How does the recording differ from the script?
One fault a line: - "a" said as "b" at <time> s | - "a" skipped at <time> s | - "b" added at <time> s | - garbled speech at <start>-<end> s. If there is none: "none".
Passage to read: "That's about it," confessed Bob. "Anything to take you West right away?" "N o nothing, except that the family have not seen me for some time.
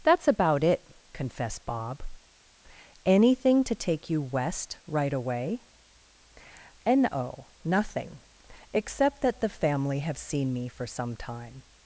- "not" skipped at 10.2 s